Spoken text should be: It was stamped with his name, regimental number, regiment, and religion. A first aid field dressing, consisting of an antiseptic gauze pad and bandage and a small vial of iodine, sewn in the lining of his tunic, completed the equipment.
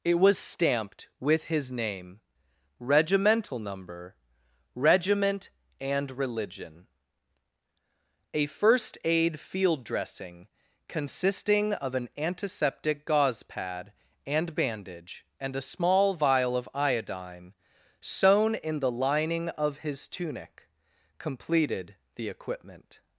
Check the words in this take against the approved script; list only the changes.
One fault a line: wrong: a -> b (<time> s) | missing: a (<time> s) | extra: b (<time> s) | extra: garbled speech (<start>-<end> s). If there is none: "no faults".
no faults